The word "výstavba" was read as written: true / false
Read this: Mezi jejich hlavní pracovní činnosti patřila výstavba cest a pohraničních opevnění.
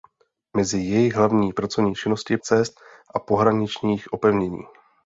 false